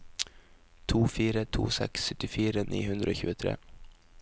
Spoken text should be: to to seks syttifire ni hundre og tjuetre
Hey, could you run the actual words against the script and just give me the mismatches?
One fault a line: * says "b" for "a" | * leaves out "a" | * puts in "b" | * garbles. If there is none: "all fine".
* puts in "fire"